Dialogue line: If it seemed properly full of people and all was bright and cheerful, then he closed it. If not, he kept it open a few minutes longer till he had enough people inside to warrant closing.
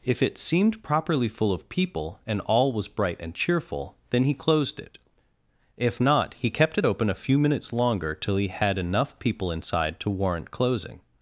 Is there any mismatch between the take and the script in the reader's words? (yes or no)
no